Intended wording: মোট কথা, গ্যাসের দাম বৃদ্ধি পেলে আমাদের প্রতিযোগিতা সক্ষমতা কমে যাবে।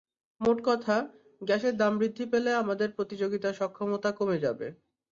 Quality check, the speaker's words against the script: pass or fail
pass